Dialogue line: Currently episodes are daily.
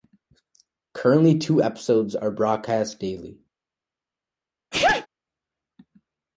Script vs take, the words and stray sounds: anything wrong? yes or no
yes